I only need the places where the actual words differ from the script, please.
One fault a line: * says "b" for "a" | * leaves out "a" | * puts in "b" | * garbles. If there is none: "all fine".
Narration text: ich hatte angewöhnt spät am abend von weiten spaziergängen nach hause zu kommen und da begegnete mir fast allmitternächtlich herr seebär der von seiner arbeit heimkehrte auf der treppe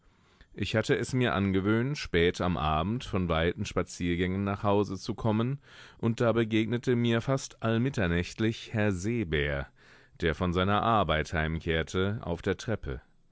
* puts in "es mir"